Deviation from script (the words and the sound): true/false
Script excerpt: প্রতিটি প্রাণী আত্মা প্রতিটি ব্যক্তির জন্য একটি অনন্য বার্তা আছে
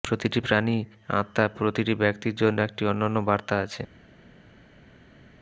false